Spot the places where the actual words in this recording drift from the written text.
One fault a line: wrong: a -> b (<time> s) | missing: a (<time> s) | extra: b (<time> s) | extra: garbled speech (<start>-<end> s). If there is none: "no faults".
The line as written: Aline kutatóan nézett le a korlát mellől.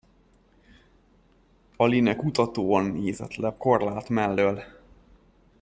no faults